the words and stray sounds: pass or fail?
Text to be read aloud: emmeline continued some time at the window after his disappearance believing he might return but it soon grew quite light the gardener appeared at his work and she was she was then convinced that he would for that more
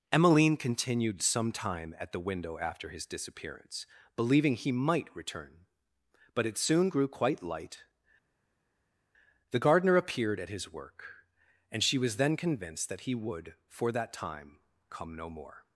fail